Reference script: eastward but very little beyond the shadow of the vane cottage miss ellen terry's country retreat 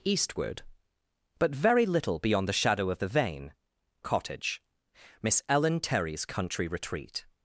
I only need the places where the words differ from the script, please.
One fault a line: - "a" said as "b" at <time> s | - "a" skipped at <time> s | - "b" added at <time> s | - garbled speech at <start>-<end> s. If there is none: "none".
none